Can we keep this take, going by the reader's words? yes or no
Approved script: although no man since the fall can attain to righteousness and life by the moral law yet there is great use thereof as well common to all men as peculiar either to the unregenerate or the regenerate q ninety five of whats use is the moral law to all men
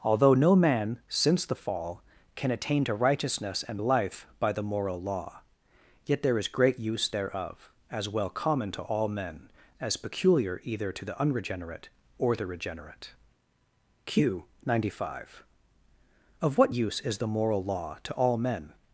no